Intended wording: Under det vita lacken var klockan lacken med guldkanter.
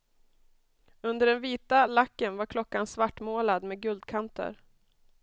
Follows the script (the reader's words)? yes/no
no